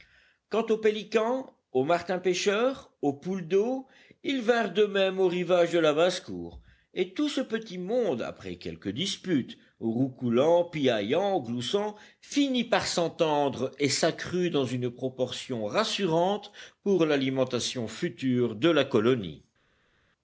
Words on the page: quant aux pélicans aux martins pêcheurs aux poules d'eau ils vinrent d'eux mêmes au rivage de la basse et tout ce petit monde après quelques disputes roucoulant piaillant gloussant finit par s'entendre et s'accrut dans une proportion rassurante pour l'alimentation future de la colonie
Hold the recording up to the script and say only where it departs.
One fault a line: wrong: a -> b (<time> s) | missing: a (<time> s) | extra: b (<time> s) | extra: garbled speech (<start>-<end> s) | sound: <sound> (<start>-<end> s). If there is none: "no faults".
extra: cour (6.2 s)